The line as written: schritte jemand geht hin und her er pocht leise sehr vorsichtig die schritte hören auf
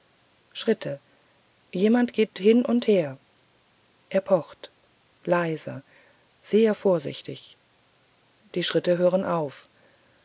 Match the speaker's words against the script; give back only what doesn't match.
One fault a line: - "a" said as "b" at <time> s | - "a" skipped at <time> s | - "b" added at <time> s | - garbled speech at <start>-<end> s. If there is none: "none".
none